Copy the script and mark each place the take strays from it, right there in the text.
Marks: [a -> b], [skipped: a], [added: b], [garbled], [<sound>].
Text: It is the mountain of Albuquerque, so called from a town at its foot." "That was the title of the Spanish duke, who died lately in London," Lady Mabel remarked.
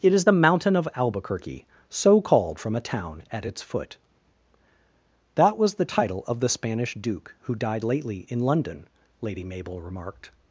It is the mountain of Albuquerque, so called from a town at its foot." "That was the title of the Spanish duke, who died lately in London," Lady Mabel remarked.